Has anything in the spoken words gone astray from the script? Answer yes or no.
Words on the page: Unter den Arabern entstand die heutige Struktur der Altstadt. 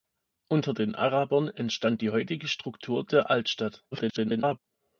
yes